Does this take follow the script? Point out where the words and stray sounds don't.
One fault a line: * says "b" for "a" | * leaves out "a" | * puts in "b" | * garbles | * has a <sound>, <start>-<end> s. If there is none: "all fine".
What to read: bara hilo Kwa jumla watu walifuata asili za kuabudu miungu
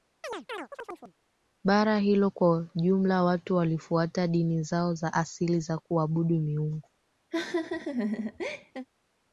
* has a chirp, 0.2-1.1 s
* puts in "dini zao za"
* has a laugh, 7.3-8.9 s